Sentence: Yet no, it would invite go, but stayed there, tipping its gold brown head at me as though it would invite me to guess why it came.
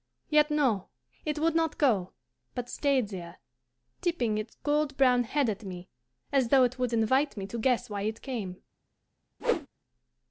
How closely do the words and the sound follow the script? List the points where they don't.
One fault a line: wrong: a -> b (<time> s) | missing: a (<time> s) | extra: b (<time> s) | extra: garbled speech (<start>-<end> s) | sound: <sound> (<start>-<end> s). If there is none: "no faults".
wrong: invite -> not (1.5 s)
sound: whoosh (9.4-9.7 s)